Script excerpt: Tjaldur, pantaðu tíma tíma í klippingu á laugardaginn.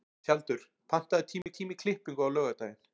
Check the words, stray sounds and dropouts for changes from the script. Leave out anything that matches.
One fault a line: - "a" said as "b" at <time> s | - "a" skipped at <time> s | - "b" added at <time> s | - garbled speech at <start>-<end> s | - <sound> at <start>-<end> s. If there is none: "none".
- dropout at 1.4-1.5 s